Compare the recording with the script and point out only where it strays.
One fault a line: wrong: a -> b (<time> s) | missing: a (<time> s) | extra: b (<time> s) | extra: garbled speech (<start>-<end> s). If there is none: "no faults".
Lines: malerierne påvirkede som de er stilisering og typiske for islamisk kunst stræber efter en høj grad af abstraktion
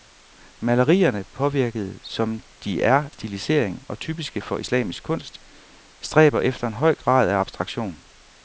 no faults